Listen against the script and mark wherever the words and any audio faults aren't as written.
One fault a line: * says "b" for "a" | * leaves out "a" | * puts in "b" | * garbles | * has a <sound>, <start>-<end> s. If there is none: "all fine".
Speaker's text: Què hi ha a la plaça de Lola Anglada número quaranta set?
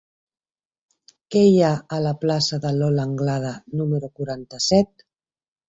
all fine